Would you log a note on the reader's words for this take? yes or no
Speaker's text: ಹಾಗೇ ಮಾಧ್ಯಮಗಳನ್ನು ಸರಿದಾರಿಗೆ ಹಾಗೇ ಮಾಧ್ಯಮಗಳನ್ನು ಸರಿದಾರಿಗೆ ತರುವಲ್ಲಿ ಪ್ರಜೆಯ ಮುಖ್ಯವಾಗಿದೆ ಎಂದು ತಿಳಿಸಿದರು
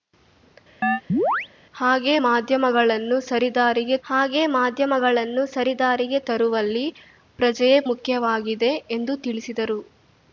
no